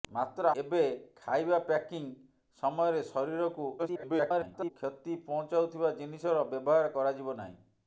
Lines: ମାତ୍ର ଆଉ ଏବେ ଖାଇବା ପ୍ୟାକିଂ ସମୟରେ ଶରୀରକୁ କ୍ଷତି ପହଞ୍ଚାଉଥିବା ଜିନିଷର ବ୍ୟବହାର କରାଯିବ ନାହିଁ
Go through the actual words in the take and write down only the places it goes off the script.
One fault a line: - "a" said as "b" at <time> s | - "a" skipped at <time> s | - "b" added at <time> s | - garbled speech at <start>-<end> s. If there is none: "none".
- "ଆଉ" skipped at 0.5 s
- garbled speech at 3.8-4.7 s